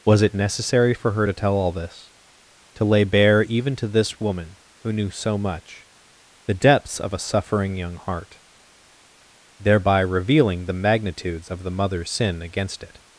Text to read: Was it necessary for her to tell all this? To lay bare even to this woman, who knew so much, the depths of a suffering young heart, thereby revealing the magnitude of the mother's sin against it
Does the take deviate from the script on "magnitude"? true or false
true